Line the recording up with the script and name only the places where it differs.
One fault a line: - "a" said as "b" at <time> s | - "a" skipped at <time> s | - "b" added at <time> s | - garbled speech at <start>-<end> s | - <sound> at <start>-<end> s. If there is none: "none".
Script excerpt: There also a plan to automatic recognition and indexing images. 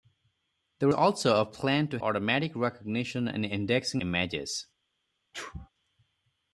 - sneeze at 5.3-5.7 s